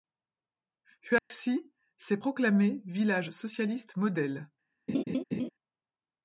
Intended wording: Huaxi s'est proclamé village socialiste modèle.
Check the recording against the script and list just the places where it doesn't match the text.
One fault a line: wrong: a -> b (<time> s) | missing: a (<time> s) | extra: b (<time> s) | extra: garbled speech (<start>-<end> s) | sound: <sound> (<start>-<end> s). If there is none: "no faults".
sound: dropout (1.2-1.3 s)
sound: laugh (4.9-5.5 s)